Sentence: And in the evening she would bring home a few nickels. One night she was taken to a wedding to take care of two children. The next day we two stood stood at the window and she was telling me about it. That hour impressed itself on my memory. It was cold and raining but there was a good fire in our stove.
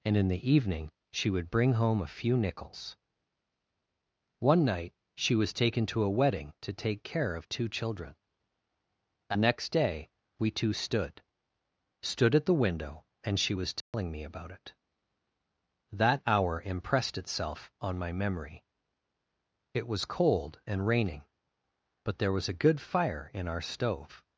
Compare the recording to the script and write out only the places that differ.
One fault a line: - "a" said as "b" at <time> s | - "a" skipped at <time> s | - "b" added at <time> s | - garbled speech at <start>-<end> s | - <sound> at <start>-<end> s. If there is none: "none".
- dropout at 13.8-13.9 s